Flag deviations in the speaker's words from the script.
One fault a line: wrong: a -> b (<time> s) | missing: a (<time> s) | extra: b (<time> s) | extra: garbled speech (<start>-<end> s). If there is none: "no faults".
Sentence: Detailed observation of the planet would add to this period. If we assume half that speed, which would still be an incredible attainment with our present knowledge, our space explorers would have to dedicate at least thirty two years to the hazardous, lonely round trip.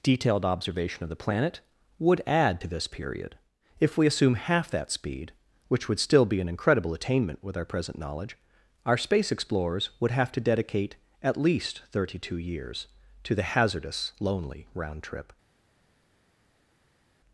no faults